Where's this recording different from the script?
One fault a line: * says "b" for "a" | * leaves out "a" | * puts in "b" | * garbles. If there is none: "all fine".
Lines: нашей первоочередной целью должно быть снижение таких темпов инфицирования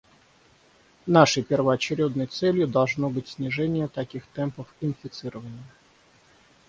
all fine